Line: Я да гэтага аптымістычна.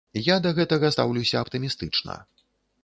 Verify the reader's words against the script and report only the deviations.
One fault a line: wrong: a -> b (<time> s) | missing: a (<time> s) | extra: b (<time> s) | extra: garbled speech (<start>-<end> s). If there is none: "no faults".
extra: стаўлюся (0.9 s)